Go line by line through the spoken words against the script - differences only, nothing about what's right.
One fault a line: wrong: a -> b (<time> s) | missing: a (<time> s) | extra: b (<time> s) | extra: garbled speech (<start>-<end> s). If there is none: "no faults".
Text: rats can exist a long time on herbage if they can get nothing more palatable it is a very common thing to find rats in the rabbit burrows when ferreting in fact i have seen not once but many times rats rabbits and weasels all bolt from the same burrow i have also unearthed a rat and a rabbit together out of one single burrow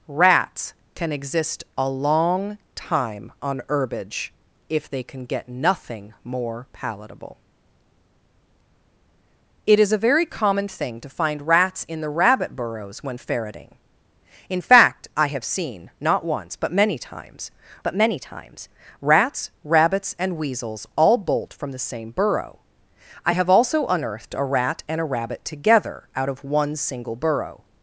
extra: but many times (17.8 s)